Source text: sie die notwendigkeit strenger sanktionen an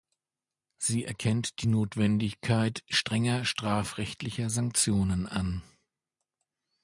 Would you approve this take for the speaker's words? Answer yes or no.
no